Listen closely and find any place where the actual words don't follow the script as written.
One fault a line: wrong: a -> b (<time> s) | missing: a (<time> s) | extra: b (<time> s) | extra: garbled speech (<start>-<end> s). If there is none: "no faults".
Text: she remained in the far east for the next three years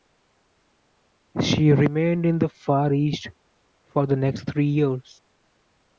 no faults